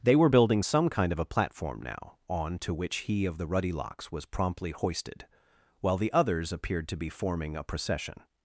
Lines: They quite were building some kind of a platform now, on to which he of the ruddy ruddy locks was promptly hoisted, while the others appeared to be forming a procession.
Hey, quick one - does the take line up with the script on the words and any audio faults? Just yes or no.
no